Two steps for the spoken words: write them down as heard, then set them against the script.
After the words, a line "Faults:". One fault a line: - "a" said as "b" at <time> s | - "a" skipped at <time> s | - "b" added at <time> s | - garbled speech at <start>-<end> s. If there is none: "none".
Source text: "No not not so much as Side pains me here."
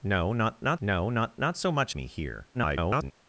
"No not not no not not so much me here." [garbled]
Faults:
- "so much as Side pains" said as "no not not so much" at 0.8 s
- garbled speech at 2.5-3.1 s